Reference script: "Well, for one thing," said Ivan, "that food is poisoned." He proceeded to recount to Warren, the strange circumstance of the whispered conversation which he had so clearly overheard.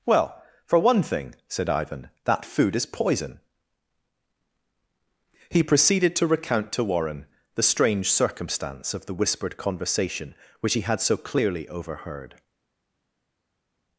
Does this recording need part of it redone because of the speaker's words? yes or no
yes